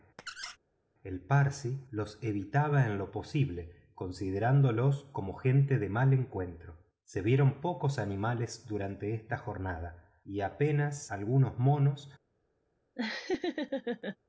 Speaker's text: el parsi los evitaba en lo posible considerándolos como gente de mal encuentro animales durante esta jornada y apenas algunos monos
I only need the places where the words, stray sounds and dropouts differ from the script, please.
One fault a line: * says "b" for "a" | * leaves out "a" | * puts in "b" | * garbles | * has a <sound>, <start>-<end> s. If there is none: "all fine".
* has a squeak, 0.2-0.6 s
* puts in "se vieron pocos"
* has a laugh, 13.0-14.2 s